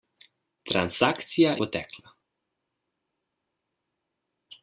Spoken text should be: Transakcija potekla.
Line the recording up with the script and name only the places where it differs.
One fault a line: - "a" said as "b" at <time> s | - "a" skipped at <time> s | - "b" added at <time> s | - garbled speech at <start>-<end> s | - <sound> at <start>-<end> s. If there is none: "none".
none